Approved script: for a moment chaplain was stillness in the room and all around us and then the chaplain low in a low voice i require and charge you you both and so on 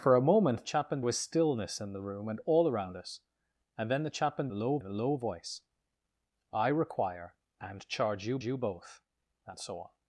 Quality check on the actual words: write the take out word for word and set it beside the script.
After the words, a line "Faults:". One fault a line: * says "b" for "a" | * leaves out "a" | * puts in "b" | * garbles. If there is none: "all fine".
for a moment chaplain was stillness in the room and all around us and then the chaplain low in a low voice i require and charge you you both and so on
Faults:
all fine